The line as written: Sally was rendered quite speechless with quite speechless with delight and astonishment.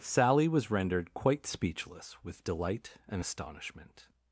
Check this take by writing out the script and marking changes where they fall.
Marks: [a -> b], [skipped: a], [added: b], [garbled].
Sally was rendered quite speechless with [skipped: quite speechless with] delight and astonishment.